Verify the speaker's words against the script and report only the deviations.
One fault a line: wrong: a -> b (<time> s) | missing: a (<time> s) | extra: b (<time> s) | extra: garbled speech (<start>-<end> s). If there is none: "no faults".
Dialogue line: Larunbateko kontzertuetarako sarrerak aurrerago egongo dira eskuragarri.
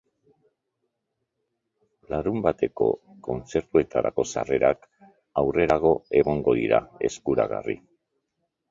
no faults